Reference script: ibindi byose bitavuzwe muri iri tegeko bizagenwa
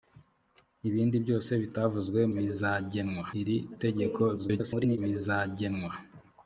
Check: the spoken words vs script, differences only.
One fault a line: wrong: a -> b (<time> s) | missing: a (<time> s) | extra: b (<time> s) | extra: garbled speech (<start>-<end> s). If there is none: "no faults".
wrong: muri -> bizagenwa (2.4 s)
extra: garbled speech (4.4-5.0 s)